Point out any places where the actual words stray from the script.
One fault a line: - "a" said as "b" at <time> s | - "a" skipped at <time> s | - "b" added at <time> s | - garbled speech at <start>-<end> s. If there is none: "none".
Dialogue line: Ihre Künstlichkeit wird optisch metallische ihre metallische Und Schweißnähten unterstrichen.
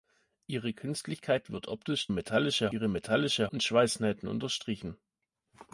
none